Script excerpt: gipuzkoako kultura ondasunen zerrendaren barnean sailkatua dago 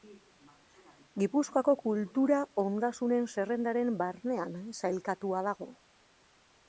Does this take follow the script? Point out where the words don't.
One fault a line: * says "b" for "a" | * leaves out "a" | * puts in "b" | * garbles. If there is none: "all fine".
all fine